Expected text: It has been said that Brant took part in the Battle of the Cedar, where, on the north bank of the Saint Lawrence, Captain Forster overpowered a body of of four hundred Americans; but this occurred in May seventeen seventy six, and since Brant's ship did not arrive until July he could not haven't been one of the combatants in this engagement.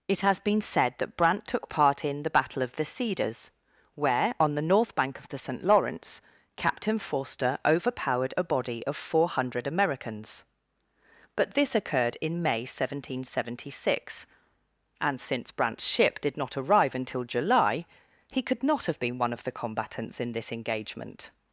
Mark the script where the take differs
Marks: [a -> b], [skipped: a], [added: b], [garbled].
It has been said that Brant took part in the Battle of the [Cedar, -> Cedars] where, on the north bank of the Saint Lawrence, Captain Forster overpowered a body of [skipped: of] four hundred Americans; but this occurred in May seventeen seventy six, and since Brant's ship did not arrive until July he could not [haven't -> have] been one of the combatants in this engagement.